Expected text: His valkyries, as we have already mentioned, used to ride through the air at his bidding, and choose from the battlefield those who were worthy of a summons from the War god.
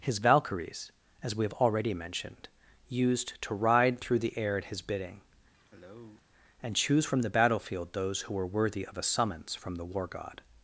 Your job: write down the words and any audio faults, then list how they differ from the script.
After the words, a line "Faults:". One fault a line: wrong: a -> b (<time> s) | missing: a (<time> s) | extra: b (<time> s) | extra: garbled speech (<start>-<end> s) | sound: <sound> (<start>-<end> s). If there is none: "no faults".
His valkyries, as we have already mentioned, used to ride through the air at his bidding, and choose from the battlefield those who were worthy of a summons from the War god.
Faults:
sound: cough (5.5-6.2 s)